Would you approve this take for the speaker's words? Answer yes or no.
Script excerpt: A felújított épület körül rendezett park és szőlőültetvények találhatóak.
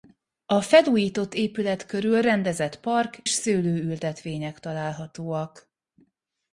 no